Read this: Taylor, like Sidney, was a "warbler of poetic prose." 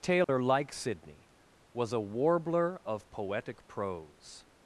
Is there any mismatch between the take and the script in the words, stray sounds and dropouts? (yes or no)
yes